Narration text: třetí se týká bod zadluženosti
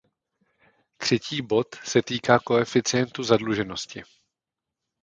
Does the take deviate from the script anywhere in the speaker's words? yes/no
yes